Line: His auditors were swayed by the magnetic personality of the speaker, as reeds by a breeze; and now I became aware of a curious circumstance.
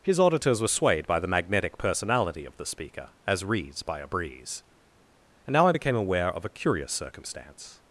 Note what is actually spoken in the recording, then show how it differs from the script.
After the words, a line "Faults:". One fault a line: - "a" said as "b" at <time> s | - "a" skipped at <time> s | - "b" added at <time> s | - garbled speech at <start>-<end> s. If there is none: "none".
His auditors were swayed by the magnetic personality of the speaker, as reeds by a breeze; and now I became aware of a curious circumstance.
Faults:
none